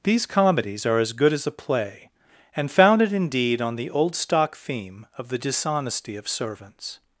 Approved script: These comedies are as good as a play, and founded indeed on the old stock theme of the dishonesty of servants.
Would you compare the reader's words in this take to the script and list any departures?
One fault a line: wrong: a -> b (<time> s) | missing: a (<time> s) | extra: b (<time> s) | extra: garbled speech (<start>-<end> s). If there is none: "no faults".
no faults